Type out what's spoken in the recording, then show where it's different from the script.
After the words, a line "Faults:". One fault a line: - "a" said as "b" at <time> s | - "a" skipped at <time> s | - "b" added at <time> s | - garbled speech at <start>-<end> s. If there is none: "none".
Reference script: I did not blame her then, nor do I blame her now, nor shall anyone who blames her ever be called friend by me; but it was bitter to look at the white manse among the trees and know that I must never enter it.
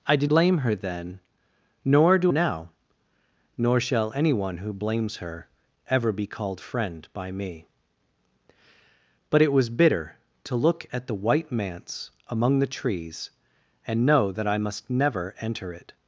I did blame her then, nor do now, nor shall anyone who blames her ever be called friend by me; but it was bitter to look at the white manse among the trees and know that I must never enter it.
Faults:
- "not" skipped at 0.3 s
- "I blame her" skipped at 2.3 s